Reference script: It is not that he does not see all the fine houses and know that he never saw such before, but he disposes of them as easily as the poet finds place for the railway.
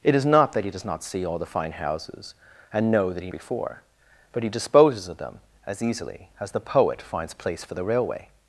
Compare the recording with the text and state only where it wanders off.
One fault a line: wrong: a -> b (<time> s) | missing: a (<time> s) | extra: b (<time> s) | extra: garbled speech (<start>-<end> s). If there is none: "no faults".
missing: never saw such (3.3 s)